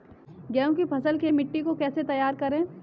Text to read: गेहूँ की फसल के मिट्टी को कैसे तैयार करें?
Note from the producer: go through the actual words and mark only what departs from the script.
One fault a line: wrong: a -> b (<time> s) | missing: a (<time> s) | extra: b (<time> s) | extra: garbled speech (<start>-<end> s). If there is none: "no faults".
no faults